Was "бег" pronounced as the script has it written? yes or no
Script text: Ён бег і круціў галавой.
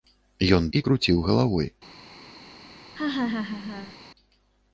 no